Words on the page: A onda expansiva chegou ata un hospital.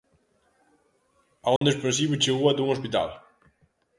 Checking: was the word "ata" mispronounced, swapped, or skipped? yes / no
no